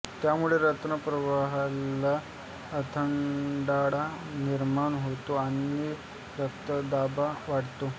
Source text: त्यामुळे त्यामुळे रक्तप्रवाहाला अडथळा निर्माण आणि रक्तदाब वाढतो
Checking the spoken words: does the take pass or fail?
fail